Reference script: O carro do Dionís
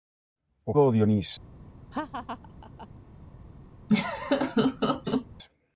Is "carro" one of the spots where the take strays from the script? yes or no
yes